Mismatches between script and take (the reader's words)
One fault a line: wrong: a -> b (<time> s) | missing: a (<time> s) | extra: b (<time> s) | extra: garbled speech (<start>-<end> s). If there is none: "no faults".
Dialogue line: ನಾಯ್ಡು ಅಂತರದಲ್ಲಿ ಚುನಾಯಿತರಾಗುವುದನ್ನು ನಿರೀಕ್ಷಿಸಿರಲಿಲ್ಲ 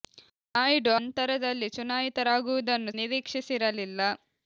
no faults